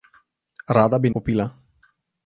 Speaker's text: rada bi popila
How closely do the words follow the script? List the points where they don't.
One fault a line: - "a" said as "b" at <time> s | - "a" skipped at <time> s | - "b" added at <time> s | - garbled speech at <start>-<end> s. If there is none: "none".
none